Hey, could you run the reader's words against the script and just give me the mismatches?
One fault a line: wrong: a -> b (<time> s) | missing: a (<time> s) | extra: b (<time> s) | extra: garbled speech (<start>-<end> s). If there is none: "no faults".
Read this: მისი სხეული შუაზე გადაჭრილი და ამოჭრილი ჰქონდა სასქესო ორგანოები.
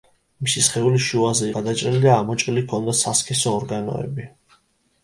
no faults